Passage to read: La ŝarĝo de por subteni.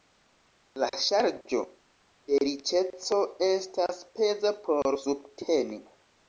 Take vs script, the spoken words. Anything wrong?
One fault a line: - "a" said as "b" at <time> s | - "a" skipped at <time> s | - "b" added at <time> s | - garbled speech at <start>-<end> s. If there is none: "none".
- "riĉeco estas peza" added at 2.5 s